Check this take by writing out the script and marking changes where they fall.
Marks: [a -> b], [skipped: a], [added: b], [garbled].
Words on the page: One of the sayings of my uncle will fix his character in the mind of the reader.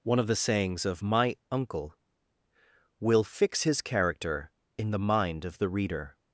One of the sayings of my uncle will fix his character in the mind of the reader.